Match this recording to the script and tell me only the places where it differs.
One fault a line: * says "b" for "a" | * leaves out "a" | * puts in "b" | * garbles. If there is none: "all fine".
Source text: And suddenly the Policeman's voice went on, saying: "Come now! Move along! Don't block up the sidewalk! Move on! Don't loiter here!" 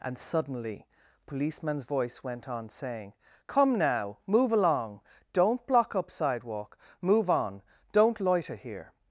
* leaves out "the"
* leaves out "the"